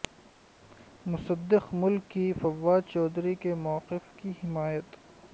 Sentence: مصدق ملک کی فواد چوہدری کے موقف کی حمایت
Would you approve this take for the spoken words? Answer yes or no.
yes